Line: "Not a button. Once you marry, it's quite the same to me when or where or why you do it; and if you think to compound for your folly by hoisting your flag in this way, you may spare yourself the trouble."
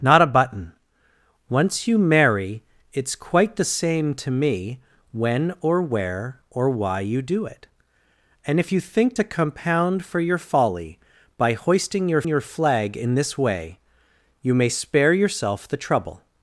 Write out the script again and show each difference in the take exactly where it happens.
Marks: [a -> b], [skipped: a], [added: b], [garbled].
"Not a button. Once you marry, it's quite the same to me when or where or why you do it; and if you think to compound for your folly by hoisting your [added: your] flag in this way, you may spare yourself the trouble."